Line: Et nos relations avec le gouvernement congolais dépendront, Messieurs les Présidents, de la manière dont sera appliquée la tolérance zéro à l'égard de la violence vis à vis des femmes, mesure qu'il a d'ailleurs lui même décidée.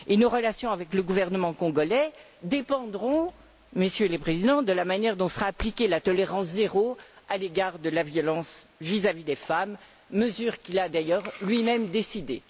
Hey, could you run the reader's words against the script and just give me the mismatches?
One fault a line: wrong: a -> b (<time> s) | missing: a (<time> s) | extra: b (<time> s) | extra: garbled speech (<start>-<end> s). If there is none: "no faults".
no faults